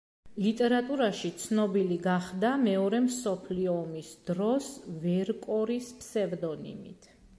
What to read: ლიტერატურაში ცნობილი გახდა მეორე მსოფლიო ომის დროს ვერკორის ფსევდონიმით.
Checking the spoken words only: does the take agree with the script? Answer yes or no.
yes